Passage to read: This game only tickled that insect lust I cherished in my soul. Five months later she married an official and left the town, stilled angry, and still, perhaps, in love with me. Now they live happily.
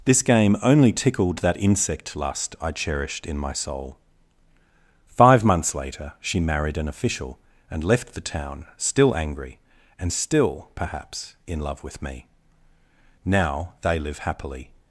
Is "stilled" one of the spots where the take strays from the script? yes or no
yes